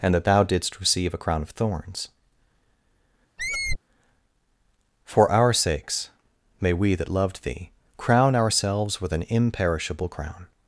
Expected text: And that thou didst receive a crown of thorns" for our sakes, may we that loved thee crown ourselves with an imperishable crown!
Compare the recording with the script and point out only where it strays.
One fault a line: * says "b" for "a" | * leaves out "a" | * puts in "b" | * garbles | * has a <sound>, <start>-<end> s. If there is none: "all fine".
* has a squeak, 3.4-3.8 s